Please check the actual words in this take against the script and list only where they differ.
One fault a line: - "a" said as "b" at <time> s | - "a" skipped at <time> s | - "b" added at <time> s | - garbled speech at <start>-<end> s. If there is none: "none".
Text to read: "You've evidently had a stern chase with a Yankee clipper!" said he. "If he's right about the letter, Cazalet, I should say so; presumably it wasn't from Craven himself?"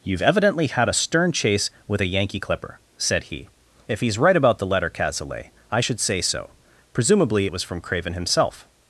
- "wasn't" said as "was" at 7.5 s